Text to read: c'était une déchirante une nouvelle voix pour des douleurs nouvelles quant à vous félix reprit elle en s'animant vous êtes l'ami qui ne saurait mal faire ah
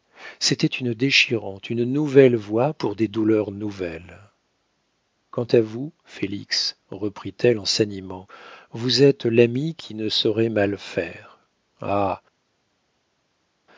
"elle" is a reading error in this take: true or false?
false